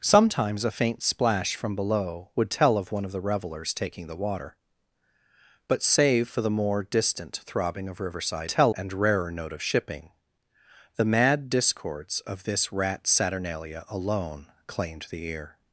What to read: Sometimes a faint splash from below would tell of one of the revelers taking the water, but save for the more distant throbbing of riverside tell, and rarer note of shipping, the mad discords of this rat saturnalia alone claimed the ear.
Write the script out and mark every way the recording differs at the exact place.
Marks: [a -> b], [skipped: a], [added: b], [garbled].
Sometimes a faint splash from below would tell of one of the revelers taking the water, but save for the more distant throbbing of riverside tell, and rarer note of shipping, the mad discords of this rat saturnalia alone claimed the ear.